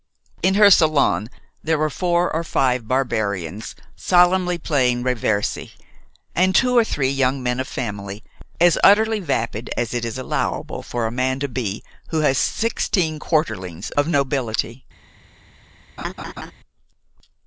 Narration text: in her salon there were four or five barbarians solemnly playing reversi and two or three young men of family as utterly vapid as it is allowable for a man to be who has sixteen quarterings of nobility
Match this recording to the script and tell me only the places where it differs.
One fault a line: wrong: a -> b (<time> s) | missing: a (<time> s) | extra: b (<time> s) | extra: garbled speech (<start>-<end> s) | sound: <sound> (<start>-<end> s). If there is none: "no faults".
sound: laugh (16.0-16.5 s)